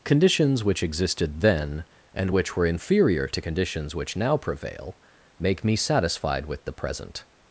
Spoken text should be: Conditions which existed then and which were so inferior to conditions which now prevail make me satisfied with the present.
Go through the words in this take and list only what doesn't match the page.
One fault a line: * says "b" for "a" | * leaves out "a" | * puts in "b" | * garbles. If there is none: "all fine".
* leaves out "so"